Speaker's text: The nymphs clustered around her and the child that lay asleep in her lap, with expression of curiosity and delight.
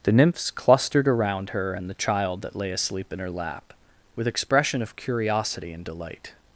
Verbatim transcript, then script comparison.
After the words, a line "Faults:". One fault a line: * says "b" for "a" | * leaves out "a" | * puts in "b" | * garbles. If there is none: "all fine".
The nymphs clustered around her and the child that lay asleep in her lap, with expression of curiosity and delight.
Faults:
all fine